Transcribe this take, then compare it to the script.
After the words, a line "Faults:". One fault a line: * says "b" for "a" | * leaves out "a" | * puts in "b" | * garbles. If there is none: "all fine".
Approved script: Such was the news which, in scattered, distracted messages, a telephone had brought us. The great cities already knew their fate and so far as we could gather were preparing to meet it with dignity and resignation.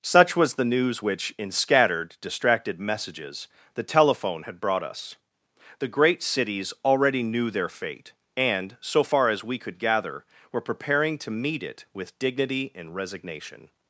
Such was the news which, in scattered, distracted messages, the telephone had brought us. The great cities already knew their fate and so far as we could gather were preparing to meet it with dignity and resignation.
Faults:
* says "the" for "a"